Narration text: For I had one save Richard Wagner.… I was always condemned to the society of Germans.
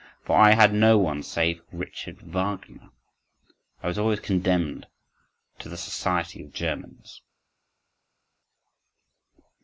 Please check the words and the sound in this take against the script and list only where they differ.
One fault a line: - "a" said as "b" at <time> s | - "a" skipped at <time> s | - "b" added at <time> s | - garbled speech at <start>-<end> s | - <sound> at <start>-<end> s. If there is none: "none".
- "no" added at 0.7 s